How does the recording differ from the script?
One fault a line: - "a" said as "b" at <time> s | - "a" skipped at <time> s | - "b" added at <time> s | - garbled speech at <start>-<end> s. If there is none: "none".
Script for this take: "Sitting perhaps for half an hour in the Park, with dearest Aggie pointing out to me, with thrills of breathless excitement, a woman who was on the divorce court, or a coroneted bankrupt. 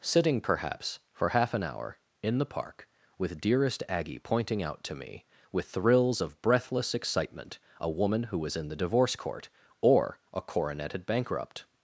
- "on" said as "in" at 8.6 s